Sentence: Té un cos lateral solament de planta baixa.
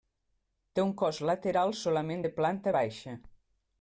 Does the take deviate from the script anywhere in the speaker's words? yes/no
no